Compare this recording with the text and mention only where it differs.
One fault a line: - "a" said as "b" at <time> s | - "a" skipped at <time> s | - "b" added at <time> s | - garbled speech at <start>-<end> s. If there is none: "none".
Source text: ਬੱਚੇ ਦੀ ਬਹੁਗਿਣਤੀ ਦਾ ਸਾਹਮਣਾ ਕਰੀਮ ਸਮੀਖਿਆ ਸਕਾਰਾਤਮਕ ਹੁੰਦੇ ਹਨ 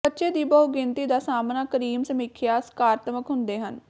none